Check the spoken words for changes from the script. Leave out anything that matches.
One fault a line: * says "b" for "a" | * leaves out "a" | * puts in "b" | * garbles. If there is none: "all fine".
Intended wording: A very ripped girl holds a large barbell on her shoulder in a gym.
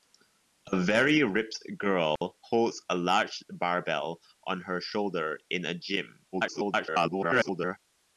* garbles